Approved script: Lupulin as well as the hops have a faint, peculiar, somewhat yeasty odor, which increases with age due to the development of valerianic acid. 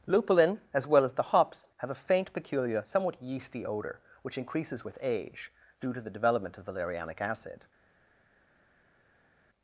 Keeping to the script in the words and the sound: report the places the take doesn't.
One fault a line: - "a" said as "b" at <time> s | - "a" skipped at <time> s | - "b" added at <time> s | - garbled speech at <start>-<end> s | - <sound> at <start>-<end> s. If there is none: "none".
none